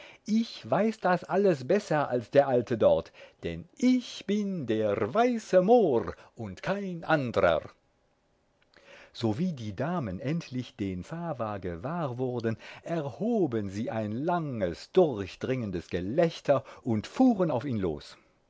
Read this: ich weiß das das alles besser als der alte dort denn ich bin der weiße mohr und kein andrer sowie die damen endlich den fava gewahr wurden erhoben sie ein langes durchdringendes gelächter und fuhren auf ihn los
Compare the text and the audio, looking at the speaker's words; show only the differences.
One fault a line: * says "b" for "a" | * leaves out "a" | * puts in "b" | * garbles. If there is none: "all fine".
* leaves out "das"